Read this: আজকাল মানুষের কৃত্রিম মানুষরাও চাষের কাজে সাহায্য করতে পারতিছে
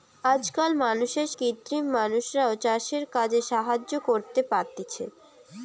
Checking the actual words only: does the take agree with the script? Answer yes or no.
yes